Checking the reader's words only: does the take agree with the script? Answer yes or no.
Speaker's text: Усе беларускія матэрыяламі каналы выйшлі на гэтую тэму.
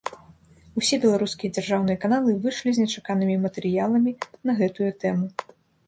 no